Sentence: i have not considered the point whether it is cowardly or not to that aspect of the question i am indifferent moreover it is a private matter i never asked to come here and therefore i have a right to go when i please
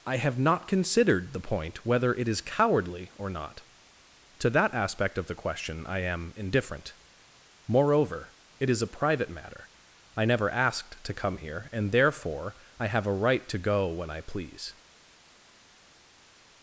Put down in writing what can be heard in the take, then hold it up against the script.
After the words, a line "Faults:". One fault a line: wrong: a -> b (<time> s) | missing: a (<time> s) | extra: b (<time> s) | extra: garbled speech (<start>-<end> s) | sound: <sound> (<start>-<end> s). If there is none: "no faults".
i have not considered the point whether it is cowardly or not to that aspect of the question i am indifferent moreover it is a private matter i never asked to come here and therefore i have a right to go when i please
Faults:
no faults